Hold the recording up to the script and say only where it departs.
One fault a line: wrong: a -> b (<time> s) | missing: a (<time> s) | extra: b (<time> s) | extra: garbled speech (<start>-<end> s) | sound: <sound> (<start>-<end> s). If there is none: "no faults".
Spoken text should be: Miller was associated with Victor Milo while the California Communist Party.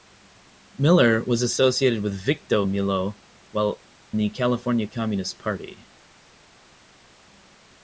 no faults